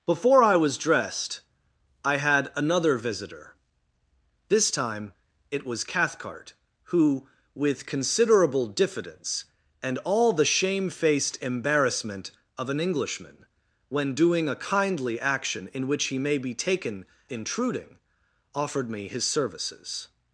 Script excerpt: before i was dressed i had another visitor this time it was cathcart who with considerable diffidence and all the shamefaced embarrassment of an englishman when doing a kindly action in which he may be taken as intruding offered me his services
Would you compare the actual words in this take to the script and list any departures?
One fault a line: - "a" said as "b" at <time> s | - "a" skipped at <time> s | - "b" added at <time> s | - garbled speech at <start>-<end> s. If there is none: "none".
- "as" skipped at 17.1 s